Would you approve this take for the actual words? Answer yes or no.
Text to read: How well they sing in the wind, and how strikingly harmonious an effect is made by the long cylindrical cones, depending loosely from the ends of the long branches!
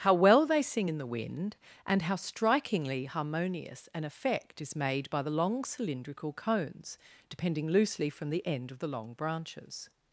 no